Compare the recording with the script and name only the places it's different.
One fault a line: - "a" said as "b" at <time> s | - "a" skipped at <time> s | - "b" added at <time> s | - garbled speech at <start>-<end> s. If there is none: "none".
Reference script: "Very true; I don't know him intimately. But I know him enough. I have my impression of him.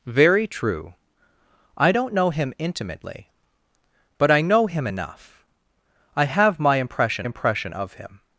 - "impression" added at 7.2 s